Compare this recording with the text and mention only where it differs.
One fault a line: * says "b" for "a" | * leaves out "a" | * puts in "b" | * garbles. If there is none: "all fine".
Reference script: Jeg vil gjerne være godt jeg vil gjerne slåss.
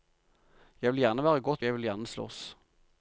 all fine